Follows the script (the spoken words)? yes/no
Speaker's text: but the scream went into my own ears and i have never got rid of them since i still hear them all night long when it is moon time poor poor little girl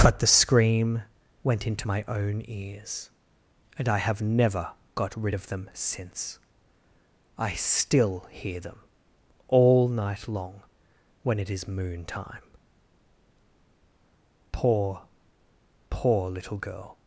yes